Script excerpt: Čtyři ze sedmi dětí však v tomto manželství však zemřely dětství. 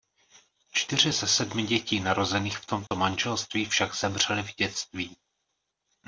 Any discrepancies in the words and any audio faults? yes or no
yes